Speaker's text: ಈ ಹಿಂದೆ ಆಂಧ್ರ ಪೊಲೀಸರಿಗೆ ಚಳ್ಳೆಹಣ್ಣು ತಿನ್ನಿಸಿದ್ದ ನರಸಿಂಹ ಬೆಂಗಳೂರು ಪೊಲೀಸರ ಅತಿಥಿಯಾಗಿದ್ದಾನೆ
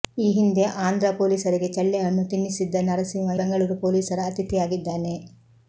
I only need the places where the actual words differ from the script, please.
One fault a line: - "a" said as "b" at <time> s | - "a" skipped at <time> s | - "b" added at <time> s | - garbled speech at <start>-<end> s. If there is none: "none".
none